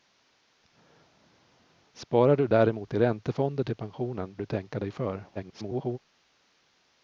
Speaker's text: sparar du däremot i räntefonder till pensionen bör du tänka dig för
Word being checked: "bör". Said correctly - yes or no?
no